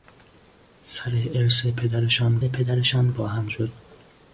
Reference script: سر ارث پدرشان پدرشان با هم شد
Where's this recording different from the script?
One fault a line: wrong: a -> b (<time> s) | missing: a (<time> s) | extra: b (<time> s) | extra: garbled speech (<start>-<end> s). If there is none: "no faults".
no faults